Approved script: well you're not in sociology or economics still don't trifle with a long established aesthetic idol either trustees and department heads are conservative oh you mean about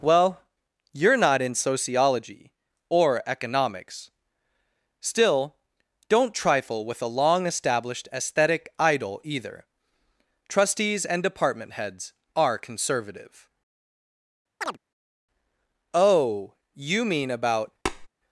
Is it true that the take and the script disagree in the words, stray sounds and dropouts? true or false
true